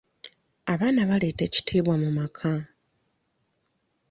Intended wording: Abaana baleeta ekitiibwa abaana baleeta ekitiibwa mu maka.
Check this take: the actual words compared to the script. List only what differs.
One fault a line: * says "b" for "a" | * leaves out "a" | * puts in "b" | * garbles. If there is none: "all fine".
* leaves out "abaana baleeta ekitiibwa"